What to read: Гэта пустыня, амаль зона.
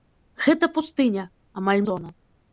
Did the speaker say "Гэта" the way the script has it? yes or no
yes